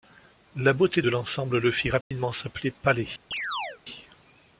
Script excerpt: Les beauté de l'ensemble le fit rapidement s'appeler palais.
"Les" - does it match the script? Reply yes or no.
no